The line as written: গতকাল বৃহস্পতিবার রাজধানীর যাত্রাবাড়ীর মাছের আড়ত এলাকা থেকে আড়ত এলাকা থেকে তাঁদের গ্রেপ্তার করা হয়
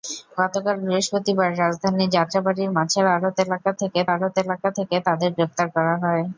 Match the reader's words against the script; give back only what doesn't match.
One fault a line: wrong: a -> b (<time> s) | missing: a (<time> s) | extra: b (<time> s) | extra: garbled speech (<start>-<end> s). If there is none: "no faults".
no faults